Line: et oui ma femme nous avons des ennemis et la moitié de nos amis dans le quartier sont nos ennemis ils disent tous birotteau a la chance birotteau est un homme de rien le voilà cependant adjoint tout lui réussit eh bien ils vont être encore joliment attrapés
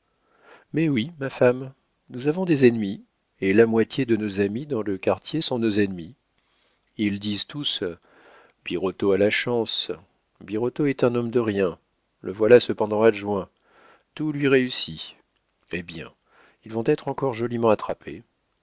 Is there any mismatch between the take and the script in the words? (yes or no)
yes